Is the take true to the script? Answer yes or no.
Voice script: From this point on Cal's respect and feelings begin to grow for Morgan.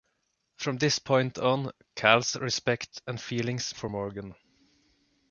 no